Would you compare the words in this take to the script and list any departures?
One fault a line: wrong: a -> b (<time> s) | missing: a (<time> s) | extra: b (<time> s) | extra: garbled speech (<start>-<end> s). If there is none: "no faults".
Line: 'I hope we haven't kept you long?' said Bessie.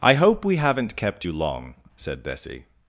no faults